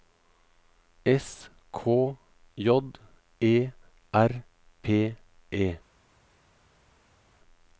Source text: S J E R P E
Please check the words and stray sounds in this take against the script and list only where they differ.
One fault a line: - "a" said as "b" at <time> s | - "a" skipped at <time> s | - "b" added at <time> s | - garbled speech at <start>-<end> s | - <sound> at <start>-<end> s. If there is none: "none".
- "K" added at 1.7 s